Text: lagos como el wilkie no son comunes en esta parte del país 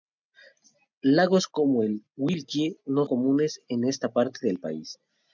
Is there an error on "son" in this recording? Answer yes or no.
yes